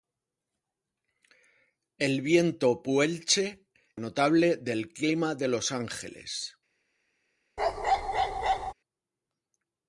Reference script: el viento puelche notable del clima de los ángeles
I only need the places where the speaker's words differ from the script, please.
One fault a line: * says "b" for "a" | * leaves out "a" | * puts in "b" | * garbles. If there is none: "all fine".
all fine